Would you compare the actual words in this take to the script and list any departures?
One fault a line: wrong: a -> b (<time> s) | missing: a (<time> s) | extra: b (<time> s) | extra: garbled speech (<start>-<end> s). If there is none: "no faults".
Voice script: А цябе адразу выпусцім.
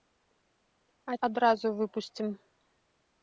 missing: цябе (1.2 s)